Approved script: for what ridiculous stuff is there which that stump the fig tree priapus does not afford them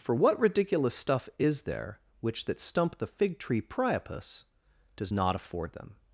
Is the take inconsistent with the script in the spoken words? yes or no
no